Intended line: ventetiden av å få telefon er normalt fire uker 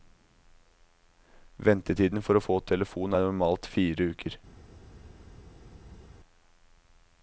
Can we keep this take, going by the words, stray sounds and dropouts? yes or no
no